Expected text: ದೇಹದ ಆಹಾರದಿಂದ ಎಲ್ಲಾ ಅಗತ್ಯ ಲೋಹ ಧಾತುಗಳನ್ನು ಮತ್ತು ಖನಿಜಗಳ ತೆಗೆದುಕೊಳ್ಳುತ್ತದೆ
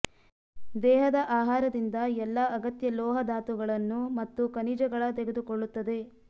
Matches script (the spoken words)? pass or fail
pass